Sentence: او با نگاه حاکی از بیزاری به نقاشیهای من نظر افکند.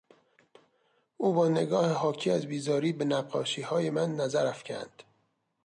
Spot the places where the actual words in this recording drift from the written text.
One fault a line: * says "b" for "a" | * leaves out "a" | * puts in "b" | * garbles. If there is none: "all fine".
all fine